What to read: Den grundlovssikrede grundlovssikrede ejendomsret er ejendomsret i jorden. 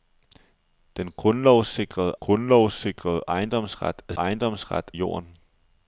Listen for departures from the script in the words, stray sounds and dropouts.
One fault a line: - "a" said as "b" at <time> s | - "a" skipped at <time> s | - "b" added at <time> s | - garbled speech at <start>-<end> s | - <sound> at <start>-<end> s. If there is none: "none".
none